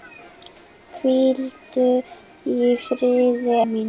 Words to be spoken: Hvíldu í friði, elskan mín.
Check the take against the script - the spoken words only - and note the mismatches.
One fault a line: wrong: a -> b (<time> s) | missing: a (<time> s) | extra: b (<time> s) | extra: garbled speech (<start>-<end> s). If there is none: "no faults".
missing: elskan (3.6 s)